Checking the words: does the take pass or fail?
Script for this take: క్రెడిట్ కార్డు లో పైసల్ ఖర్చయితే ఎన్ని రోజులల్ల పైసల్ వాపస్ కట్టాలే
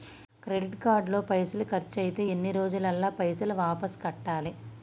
pass